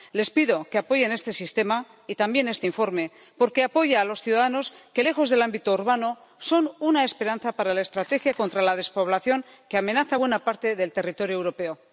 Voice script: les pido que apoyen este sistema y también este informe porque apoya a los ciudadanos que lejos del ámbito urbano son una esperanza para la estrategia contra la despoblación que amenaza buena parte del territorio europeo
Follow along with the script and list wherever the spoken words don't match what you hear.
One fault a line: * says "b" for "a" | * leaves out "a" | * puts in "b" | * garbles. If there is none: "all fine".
all fine